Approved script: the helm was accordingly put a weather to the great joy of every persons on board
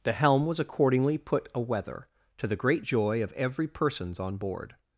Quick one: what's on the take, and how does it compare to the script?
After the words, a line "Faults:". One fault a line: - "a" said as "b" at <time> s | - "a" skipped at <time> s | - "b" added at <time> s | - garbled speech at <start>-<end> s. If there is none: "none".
the helm was accordingly put a weather to the great joy of every persons on board
Faults:
none